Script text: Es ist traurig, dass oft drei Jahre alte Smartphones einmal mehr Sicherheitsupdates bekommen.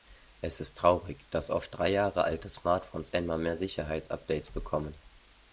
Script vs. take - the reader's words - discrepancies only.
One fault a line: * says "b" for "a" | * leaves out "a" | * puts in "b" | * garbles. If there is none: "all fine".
all fine